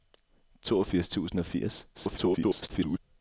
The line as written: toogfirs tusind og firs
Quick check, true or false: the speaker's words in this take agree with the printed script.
false